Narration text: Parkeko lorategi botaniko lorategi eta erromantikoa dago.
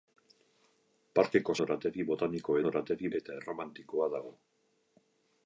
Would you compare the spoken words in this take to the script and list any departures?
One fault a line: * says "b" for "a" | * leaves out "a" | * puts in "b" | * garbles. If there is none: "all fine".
all fine